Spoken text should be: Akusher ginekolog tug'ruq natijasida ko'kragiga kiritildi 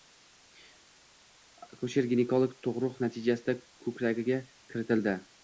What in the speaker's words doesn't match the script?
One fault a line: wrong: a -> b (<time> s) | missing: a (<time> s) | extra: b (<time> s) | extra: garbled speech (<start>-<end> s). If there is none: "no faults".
no faults